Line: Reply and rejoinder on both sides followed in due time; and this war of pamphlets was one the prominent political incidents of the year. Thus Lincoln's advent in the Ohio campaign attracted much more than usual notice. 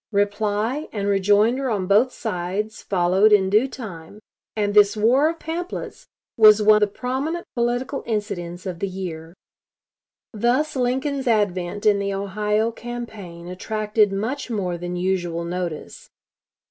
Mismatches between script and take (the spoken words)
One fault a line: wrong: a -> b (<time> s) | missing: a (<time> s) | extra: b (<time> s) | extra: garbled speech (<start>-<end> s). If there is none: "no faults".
no faults